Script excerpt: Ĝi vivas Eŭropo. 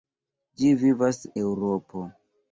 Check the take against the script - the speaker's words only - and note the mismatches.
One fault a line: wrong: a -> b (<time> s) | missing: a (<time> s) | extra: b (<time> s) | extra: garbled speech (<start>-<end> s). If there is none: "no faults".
no faults